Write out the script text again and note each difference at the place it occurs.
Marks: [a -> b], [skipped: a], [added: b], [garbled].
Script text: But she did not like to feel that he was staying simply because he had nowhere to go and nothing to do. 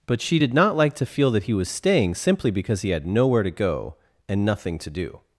But she did not like to feel that he was staying simply because he had nowhere to go and nothing to do.